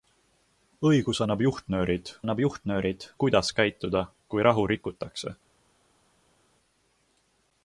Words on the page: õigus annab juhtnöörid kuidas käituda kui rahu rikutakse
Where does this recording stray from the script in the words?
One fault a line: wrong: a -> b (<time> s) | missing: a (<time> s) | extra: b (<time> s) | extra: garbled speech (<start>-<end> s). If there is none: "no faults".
extra: annab juhtnöörid (2.2 s)